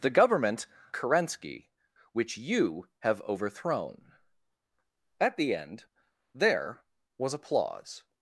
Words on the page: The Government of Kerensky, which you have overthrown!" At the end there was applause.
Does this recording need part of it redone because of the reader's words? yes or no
yes